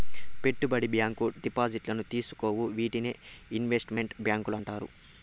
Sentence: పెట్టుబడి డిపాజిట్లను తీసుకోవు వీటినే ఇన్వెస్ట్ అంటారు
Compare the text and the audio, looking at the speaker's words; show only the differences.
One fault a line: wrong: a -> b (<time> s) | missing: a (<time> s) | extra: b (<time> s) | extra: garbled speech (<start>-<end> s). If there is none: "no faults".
extra: బ్యాంకు (0.9 s)
extra: మెంట్ బ్యాంకులు (4.0 s)